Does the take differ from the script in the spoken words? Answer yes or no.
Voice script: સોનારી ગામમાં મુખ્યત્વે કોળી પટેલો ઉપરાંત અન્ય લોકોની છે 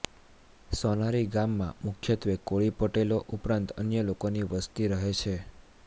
yes